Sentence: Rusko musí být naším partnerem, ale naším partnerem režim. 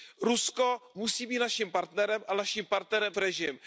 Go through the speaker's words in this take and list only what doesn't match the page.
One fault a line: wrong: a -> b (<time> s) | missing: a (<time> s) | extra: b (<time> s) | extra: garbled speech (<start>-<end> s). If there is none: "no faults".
no faults